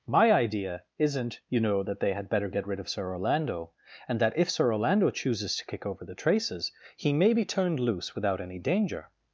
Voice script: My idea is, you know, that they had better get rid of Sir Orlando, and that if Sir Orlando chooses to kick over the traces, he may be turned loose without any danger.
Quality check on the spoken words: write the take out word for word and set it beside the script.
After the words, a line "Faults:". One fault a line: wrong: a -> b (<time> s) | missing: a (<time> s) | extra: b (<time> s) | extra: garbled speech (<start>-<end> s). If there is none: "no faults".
My idea isn't, you know, that they had better get rid of Sir Orlando, and that if Sir Orlando chooses to kick over the traces, he may be turned loose without any danger.
Faults:
wrong: is -> isn't (1.0 s)